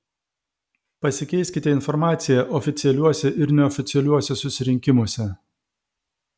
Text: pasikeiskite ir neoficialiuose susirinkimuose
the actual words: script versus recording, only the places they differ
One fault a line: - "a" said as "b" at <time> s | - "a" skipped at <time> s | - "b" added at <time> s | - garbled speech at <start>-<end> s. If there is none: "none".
- "informacija oficialiuose" added at 1.8 s